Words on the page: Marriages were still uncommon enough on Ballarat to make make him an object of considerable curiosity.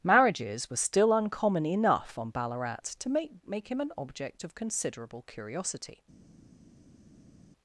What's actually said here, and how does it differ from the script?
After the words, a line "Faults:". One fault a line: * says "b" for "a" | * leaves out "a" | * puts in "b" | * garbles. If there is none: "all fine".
Marriages were still uncommon enough on Ballarat to make make him an object of considerable curiosity.
Faults:
all fine